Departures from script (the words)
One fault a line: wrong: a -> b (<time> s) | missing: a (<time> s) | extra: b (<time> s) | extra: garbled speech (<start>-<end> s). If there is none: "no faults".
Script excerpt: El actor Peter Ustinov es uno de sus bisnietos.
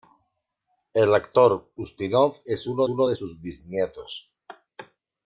missing: Peter (1.7 s)
extra: uno (2.9 s)